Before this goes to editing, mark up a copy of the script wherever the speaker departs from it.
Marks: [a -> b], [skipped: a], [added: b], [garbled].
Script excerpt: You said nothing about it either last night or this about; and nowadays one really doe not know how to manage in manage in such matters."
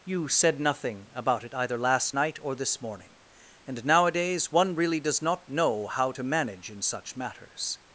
You said nothing about it either last night or this [about; -> morning] and nowadays one really [doe -> does] not know how to manage in [skipped: manage in] such matters."